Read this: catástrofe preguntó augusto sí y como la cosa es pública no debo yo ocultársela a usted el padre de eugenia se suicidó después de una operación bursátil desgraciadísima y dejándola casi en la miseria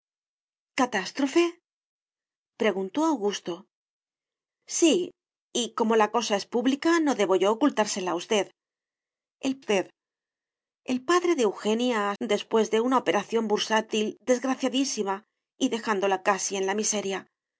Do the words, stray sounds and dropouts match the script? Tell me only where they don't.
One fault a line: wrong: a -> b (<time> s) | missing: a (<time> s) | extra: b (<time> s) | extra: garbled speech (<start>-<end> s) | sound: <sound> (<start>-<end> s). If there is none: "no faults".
extra: usted el (9.6 s)
missing: se suicidó (12.2 s)